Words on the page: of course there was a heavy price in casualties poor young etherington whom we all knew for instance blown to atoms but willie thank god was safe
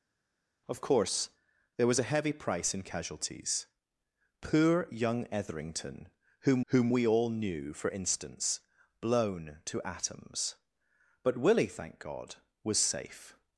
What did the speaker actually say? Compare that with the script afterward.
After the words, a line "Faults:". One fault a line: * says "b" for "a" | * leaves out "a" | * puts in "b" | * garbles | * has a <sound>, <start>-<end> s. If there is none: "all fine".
of course there was a heavy price in casualties poor young etherington whom whom we all knew for instance blown to atoms but willie thank god was safe
Faults:
* puts in "whom"